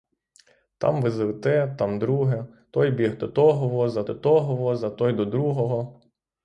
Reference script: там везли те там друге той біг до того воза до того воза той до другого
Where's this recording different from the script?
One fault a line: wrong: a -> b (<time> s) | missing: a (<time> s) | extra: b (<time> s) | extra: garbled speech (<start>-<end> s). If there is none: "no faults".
no faults